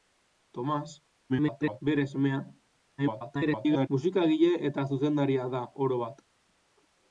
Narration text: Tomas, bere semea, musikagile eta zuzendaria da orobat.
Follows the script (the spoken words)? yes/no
no